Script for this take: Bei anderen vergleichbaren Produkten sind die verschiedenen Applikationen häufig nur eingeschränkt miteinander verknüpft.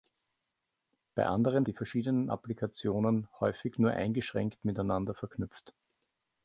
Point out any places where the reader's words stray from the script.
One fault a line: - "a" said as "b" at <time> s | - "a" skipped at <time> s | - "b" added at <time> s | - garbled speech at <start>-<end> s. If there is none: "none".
- "vergleichbaren Produkten sind" skipped at 1.7 s